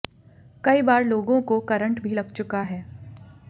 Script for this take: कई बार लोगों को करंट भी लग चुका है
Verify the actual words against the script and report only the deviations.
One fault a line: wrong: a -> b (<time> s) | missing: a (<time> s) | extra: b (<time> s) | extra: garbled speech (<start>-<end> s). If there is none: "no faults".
no faults